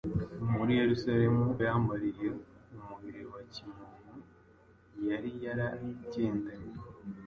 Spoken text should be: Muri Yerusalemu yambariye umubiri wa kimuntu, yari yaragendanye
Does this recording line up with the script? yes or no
yes